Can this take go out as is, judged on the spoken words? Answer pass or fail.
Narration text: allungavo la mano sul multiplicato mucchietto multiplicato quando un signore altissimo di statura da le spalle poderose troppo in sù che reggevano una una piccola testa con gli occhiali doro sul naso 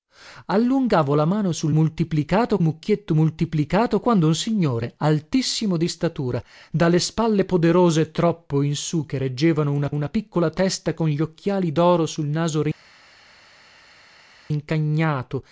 pass